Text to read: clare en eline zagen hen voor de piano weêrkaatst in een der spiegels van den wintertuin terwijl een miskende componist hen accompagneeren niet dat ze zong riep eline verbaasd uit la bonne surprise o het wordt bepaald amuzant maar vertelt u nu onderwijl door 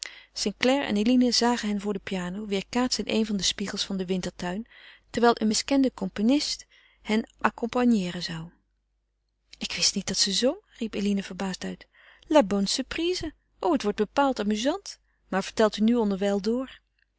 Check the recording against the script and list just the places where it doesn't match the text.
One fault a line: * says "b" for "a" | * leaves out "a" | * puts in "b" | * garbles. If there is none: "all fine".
* puts in "zou ik wist"